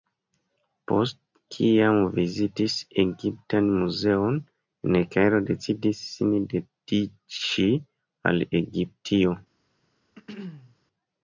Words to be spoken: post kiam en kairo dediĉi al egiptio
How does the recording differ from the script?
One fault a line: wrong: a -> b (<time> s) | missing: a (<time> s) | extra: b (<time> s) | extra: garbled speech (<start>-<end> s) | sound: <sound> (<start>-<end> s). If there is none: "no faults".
extra: vizitis egiptan muzeon (2.1 s)
extra: decidis sin (5.5 s)
sound: throat clearing (10.2-10.8 s)